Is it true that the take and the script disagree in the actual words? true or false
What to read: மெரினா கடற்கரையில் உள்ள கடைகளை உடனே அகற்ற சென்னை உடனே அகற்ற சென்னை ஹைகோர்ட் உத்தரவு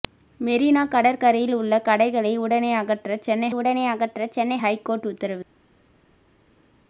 false